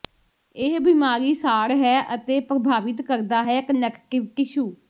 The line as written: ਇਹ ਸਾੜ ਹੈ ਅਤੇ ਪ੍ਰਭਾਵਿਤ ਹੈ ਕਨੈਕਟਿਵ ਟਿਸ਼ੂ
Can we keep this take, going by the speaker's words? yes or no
no